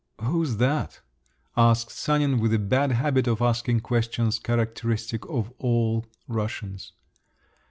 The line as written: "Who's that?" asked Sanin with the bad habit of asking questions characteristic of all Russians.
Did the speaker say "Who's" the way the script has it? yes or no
yes